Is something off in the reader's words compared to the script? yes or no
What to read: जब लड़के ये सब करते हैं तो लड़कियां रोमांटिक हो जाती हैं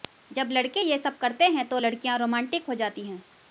no